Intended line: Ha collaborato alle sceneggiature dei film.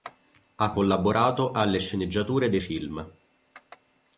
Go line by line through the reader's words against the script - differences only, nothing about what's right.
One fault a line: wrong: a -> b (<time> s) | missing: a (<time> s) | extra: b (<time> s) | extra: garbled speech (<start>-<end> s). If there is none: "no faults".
no faults